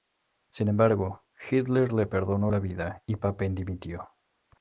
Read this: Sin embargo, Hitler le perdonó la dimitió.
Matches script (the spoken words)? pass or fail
fail